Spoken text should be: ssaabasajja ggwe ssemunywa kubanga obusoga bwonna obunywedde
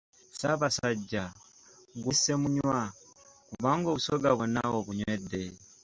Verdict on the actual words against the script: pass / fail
pass